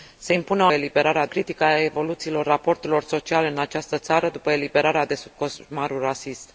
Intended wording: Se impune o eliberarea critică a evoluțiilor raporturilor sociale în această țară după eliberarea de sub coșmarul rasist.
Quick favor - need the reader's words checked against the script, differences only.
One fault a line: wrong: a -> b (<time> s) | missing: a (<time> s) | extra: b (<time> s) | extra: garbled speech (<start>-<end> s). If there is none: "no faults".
no faults